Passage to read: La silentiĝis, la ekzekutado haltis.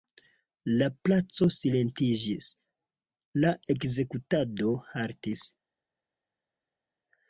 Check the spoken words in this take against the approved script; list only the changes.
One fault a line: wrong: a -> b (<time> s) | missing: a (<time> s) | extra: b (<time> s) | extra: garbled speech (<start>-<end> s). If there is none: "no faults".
extra: placo (1.1 s)